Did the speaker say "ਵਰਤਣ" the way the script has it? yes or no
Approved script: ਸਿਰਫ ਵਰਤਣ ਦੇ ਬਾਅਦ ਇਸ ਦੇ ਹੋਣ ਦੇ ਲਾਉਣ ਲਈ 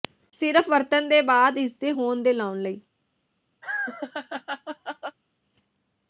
yes